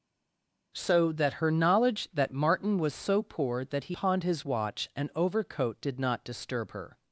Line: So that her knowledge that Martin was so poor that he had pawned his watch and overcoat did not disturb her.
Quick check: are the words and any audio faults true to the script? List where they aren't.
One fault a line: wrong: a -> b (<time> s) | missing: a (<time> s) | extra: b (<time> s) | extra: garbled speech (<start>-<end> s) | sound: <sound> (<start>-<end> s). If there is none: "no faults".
missing: had (4.0 s)